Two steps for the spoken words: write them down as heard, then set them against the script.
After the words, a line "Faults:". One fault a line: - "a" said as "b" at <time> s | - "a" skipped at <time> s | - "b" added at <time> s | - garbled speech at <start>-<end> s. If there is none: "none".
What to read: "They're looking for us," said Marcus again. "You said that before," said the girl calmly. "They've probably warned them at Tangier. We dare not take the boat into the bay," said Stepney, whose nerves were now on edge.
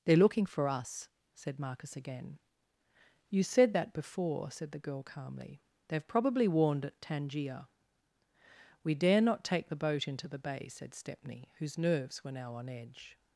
"They're looking for us," said Marcus again. "You said that before," said the girl calmly. "They've probably warned at Tangier. We dare not take the boat into the bay," said Stepney, whose nerves were now on edge.
Faults:
- "them" skipped at 6.8 s